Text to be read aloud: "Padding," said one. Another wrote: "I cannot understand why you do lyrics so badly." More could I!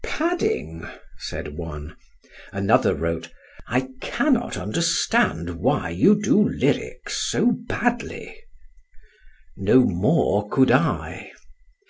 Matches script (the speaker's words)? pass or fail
fail